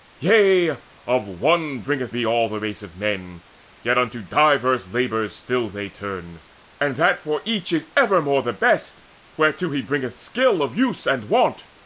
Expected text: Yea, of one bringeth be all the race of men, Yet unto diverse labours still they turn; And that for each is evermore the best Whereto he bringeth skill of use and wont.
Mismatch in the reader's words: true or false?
false